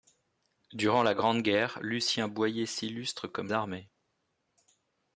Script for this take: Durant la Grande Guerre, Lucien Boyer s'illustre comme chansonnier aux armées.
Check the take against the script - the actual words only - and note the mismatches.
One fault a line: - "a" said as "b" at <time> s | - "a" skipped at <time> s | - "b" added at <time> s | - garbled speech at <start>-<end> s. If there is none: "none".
- "chansonnier aux" skipped at 3.5 s